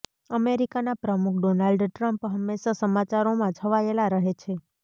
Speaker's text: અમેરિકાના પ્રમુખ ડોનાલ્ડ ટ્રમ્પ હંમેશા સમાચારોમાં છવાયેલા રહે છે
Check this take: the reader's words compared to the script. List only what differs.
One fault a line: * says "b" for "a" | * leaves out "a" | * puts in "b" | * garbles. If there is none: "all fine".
all fine